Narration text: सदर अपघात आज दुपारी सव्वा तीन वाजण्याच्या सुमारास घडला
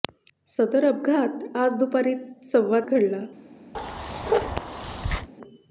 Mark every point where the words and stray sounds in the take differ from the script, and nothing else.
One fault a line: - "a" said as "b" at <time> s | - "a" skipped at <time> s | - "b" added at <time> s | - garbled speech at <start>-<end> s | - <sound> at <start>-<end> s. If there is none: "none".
- "तीन वाजण्याच्या सुमारास" skipped at 2.8 s
- bark at 3.7-5.3 s